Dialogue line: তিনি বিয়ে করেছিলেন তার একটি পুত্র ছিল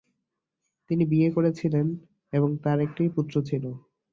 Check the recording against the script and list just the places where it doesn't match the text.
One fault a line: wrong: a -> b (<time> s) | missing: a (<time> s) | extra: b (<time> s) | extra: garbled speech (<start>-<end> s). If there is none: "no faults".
extra: এবং (2.3 s)